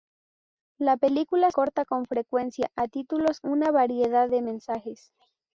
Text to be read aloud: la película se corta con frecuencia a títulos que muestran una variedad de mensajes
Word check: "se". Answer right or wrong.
wrong